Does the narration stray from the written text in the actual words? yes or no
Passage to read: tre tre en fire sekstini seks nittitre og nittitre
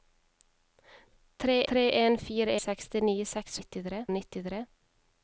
no